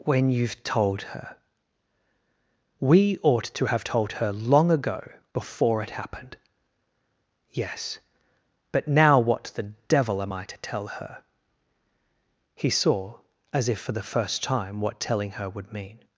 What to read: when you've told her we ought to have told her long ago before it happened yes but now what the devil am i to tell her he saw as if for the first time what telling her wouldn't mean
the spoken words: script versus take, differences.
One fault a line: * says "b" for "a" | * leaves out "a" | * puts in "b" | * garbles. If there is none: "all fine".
* says "would" for "wouldn't"